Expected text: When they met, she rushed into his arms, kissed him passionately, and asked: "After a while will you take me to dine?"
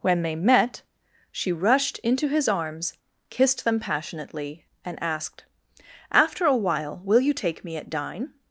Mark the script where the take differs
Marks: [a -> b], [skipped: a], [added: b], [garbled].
When they met, she rushed into his arms, kissed [him -> them] passionately, and asked: "After a while will you take me [to -> at] dine?"